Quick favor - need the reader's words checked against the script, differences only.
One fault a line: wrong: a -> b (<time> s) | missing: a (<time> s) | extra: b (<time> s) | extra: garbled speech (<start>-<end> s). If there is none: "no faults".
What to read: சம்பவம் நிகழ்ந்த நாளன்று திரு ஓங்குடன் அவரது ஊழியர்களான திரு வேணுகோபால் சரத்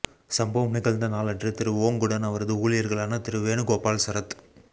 no faults